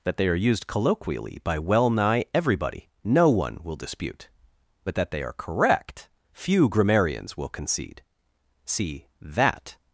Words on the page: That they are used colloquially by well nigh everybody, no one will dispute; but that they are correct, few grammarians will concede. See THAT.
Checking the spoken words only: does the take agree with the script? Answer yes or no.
yes